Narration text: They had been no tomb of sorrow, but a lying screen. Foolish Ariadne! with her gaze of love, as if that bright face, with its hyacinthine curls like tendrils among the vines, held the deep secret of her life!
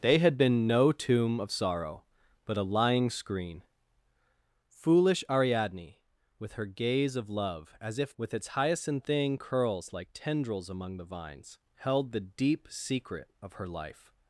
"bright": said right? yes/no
no